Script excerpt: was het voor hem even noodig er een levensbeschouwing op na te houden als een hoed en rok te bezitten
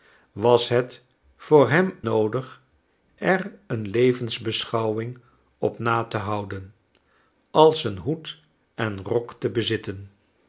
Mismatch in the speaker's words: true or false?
true